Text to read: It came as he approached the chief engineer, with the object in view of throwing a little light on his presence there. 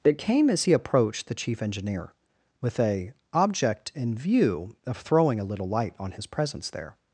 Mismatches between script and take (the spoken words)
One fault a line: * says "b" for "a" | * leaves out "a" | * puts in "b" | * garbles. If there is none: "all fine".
* says "a" for "the"